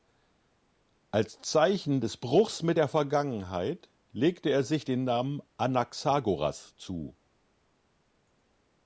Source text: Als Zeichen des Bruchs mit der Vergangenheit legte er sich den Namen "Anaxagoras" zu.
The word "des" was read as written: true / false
true